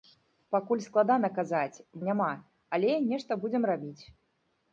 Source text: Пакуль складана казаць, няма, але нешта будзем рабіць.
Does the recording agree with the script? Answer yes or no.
yes